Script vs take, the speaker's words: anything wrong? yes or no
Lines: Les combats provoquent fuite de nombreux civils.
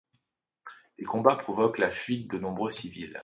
yes